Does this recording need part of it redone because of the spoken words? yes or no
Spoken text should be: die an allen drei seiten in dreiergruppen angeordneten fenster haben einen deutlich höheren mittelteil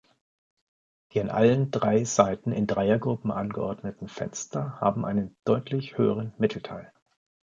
no